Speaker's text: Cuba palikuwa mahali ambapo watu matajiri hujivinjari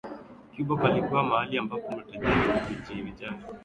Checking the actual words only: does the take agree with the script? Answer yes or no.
no